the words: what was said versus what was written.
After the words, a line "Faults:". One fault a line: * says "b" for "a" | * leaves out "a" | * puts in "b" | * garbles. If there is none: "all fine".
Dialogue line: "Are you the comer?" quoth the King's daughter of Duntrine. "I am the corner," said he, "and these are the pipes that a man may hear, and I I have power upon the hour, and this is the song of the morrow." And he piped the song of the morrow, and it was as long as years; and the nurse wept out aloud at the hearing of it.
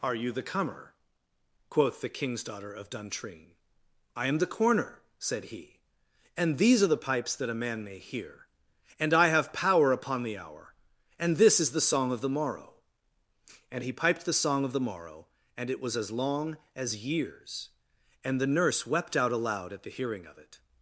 "Are you the comer?" quoth the King's daughter of Duntrine. "I am the corner," said he, "and these are the pipes that a man may hear, and I have power upon the hour, and this is the song of the morrow." And he piped the song of the morrow, and it was as long as years; and the nurse wept out aloud at the hearing of it.
Faults:
* leaves out "I"